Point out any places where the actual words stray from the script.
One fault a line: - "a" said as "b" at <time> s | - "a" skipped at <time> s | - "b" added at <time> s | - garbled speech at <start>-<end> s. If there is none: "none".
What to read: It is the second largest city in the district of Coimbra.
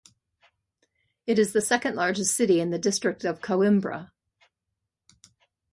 none